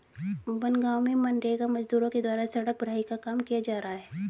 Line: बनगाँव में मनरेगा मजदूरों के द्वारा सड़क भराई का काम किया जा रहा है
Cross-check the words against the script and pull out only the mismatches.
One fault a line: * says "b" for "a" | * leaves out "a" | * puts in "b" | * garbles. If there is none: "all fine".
all fine